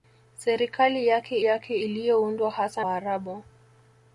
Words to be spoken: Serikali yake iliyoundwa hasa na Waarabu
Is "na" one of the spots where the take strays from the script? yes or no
yes